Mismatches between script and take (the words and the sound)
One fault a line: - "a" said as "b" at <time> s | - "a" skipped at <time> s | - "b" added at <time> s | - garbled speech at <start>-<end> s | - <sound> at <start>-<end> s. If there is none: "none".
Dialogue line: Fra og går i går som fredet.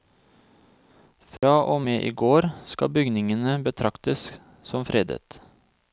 - dropout at 1.4-1.4 s
- "går" said as "med" at 1.9 s
- "skal bygningene betraktes" added at 2.7 s